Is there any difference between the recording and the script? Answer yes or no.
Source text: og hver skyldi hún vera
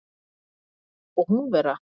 yes